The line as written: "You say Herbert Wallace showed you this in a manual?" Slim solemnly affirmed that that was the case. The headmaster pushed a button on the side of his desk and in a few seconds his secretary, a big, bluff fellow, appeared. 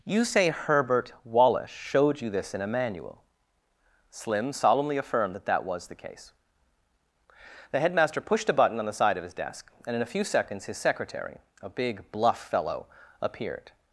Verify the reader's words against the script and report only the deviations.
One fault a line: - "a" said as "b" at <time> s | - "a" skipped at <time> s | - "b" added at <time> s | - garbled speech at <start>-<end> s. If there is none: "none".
none